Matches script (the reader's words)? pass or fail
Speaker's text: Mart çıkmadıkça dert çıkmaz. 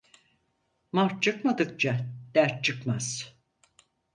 pass